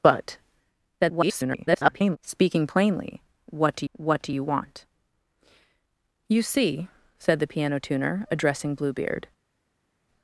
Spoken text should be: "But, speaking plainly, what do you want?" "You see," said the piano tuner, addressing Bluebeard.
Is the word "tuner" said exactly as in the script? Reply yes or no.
yes